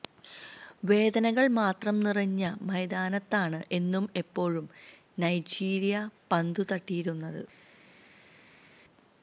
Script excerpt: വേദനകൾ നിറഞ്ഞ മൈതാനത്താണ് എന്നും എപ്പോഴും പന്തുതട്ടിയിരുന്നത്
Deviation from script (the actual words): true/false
true